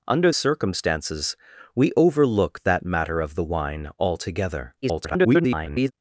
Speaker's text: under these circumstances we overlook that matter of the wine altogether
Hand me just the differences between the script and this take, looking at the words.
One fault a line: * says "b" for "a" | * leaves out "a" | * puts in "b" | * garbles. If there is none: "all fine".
* leaves out "these"
* garbles